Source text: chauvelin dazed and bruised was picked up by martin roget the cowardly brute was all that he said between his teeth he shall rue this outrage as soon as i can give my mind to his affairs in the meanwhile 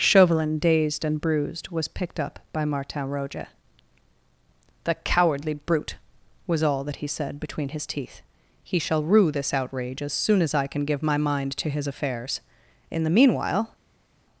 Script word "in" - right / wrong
right